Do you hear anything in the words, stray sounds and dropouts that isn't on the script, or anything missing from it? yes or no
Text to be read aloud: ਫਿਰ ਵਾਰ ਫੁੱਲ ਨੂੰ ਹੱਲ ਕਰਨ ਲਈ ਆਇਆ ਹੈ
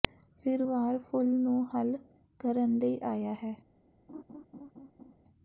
yes